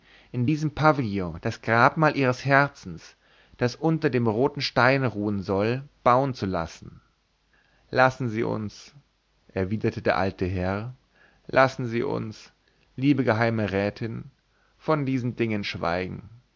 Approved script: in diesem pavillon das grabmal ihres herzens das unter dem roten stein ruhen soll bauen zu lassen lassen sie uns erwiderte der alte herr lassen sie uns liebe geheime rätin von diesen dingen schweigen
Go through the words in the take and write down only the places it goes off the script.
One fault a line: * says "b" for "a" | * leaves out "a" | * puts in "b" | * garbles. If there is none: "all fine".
all fine